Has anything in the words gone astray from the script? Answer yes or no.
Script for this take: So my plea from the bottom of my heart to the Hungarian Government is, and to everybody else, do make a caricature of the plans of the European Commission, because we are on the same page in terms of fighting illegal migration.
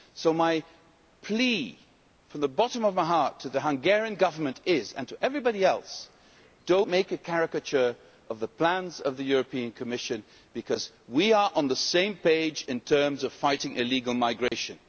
no